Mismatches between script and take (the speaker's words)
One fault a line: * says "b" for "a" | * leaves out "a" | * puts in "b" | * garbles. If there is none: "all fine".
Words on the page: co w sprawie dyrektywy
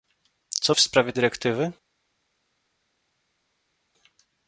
all fine